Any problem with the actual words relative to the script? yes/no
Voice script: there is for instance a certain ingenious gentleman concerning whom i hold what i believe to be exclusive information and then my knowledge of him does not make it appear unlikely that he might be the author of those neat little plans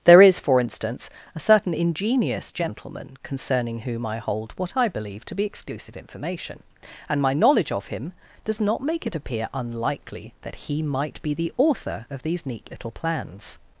yes